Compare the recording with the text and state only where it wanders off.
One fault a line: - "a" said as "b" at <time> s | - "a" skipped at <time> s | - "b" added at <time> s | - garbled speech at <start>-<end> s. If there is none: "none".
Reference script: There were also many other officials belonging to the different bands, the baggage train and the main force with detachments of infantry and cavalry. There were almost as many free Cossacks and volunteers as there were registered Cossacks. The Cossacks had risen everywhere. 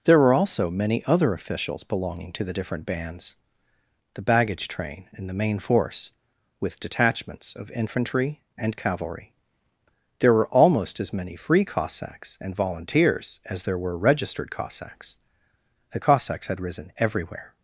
none